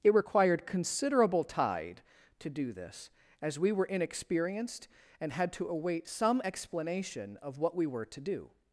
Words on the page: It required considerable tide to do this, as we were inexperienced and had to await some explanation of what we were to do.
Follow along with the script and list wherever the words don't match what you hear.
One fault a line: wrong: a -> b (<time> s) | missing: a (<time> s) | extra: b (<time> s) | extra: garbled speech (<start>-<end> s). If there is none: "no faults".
no faults